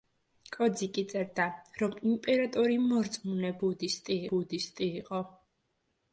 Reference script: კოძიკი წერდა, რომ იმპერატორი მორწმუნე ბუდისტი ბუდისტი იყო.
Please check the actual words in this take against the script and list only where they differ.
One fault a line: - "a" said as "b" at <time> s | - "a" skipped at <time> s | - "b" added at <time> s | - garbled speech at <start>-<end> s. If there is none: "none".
none